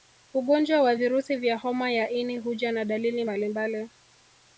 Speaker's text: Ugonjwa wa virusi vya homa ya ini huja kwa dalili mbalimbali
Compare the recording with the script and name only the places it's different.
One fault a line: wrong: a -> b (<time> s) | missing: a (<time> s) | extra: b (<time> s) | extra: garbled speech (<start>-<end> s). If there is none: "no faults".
wrong: kwa -> na (2.7 s)